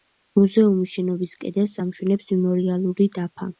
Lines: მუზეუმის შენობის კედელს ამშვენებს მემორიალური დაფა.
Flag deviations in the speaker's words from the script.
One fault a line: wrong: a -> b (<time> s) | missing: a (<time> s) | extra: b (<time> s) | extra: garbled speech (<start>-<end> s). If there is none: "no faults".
no faults